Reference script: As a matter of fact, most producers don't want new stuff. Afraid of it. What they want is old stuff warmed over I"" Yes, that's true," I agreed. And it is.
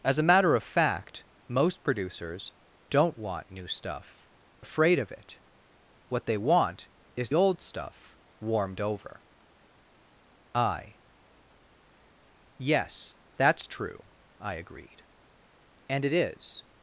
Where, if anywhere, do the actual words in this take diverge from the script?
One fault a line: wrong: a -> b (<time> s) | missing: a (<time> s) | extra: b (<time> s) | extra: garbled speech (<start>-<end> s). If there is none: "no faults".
no faults